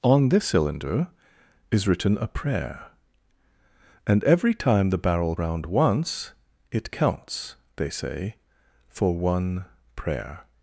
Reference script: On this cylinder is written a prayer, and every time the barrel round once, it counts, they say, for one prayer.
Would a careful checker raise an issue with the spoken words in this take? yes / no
no